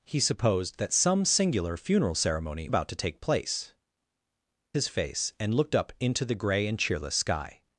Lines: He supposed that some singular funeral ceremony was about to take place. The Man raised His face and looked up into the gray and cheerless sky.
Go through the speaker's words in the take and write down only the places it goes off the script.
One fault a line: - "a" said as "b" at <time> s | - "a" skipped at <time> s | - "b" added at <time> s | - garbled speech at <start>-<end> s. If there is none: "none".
- "was" skipped at 2.7 s
- "The Man raised" skipped at 3.7 s